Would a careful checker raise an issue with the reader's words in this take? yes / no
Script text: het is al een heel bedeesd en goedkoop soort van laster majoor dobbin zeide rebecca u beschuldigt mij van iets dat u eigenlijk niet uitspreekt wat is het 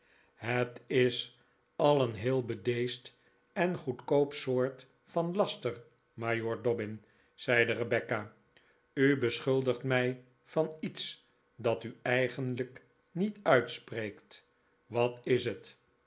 no